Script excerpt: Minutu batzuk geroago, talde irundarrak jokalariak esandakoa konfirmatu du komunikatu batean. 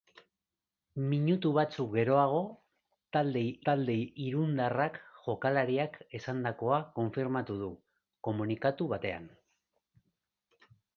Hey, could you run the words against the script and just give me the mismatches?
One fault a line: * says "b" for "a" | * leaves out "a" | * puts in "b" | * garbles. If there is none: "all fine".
* puts in "talde"